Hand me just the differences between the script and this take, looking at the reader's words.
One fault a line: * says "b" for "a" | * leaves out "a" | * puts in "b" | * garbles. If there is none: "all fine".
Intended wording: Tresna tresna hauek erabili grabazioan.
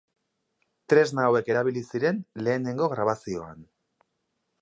* leaves out "tresna"
* puts in "ziren lehenengo"